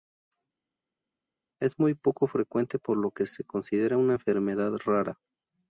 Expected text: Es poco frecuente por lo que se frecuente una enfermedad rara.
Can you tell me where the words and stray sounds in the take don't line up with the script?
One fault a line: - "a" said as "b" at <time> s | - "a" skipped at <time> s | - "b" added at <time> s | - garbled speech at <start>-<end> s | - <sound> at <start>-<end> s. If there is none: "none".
- "muy" added at 1.8 s
- "frecuente" said as "considera" at 3.4 s